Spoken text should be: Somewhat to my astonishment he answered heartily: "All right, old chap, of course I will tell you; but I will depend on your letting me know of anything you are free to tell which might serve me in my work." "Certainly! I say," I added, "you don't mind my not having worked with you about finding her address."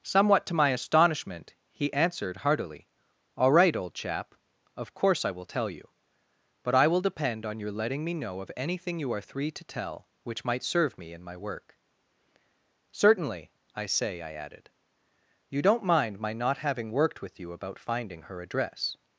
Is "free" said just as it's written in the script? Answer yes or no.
no